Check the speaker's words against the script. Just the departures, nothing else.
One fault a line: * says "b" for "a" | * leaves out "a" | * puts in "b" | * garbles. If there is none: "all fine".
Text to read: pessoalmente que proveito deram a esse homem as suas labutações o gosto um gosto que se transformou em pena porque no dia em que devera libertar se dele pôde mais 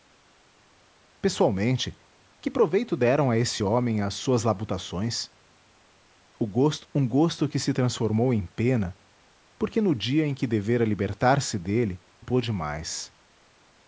all fine